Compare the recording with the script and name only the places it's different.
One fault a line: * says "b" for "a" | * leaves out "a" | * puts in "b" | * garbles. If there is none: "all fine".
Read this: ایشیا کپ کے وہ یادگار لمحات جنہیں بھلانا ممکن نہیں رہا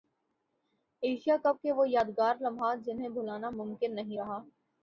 all fine